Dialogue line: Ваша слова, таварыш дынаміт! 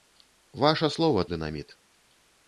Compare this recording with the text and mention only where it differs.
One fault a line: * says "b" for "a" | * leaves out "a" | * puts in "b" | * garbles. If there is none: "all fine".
* leaves out "таварыш"